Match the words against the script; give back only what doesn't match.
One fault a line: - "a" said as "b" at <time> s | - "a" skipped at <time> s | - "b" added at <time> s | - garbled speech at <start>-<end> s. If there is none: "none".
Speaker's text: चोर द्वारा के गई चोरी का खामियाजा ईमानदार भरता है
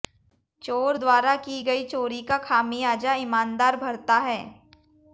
- "के" said as "की" at 1.4 s